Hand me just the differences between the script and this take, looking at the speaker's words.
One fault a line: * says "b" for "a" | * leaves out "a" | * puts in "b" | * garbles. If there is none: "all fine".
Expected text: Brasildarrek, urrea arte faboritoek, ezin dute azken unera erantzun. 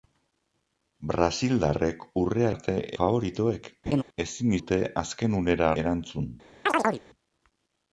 all fine